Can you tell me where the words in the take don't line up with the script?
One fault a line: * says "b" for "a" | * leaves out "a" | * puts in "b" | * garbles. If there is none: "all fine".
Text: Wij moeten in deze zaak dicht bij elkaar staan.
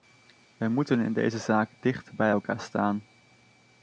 all fine